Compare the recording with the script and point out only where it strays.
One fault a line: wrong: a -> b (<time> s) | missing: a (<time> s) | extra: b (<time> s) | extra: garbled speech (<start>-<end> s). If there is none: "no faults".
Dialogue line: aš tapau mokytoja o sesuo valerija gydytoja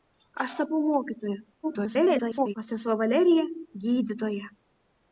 extra: garbled speech (1.6-2.5 s)